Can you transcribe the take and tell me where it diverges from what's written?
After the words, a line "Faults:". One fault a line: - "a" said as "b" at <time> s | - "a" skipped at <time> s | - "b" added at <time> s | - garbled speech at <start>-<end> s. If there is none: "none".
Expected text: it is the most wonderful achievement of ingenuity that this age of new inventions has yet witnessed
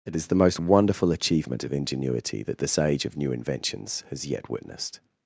it is the most wonderful achievement of ingenuity that this age of new inventions has yet witnessed
Faults:
none